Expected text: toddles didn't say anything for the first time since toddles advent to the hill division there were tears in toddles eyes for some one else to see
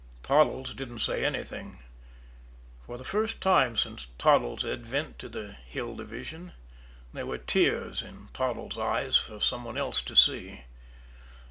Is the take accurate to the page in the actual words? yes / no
yes